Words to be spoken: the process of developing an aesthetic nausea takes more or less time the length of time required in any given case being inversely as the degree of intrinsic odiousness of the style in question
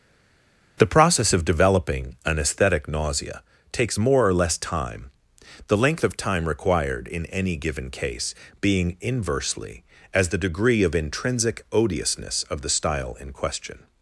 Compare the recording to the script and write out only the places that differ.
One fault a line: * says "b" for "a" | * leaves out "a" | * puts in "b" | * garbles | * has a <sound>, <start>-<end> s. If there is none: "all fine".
all fine